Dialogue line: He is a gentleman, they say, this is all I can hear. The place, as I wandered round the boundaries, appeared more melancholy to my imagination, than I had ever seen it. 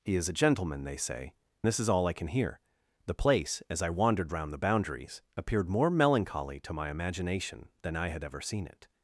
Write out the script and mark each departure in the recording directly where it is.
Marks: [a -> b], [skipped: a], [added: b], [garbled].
He is a gentleman, they say, this is all I can hear. The place, as I wandered round the boundaries, appeared more melancholy to my imagination, than I had ever seen it.